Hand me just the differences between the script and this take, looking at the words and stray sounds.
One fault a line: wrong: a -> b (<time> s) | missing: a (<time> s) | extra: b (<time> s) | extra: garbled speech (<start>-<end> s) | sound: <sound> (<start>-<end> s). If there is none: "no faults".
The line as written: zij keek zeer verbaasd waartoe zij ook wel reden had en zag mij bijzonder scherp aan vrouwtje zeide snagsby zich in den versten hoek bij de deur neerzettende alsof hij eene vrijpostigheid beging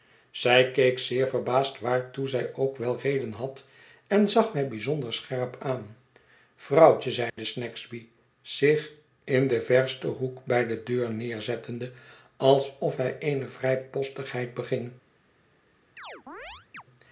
sound: dropout (7.3-7.4 s)
sound: chirp (16.0-16.8 s)